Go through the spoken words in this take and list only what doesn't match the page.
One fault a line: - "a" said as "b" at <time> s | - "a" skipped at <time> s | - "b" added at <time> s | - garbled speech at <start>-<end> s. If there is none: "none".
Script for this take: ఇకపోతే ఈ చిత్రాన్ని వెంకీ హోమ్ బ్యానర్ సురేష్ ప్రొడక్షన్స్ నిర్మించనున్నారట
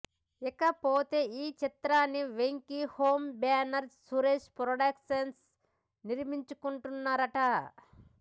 none